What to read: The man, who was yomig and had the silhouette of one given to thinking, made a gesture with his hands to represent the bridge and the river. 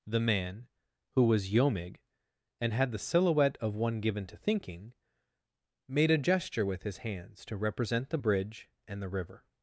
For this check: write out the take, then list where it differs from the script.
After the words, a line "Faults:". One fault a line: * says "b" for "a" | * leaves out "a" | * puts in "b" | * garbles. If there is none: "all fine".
The man, who was yomig and had the silhouette of one given to thinking, made a gesture with his hands to represent the bridge and the river.
Faults:
all fine